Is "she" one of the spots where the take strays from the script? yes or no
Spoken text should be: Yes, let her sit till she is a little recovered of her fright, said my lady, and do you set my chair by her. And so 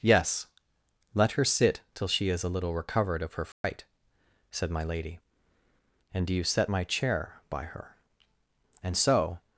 no